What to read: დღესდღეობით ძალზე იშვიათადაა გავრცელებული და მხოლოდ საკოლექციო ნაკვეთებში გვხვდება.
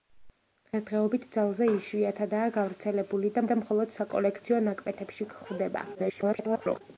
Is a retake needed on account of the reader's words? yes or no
yes